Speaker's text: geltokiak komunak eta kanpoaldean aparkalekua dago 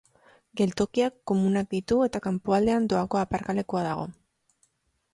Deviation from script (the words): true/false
true